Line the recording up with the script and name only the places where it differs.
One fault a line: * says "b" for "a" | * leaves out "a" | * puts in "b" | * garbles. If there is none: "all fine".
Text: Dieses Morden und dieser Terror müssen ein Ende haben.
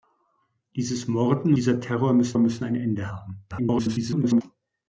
* leaves out "und"
* puts in "müssen"
* garbles